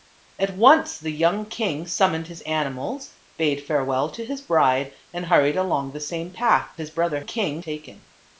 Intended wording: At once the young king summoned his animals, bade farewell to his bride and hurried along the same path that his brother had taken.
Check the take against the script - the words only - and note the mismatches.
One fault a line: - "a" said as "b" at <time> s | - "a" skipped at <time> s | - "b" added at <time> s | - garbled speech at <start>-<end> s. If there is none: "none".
- "that" skipped at 6.7 s
- "had" said as "king" at 7.2 s